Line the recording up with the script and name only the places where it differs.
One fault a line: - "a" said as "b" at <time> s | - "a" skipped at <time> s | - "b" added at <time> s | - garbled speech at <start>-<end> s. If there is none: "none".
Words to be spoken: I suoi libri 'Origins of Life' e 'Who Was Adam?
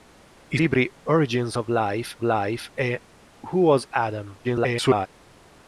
- "suoi" skipped at 0.6 s
- "Life" added at 2.2 s
- garbled speech at 4.4-5.1 s